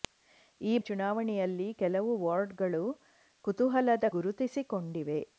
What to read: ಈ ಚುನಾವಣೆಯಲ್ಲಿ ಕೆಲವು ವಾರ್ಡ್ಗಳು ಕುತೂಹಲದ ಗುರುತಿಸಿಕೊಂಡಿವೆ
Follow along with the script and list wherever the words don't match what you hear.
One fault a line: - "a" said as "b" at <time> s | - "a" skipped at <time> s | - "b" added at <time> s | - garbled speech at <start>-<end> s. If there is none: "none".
none